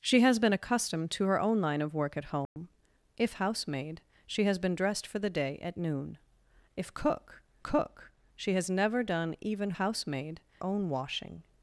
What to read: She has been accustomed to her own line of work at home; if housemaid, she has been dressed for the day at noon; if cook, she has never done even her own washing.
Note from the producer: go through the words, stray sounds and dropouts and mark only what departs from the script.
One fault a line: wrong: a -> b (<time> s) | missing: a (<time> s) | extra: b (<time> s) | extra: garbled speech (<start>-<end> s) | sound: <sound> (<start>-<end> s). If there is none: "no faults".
sound: dropout (2.5-2.6 s)
extra: cook (7.6 s)
wrong: her -> housemaid (9.7 s)